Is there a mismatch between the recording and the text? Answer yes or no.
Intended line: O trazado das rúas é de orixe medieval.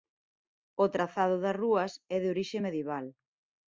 no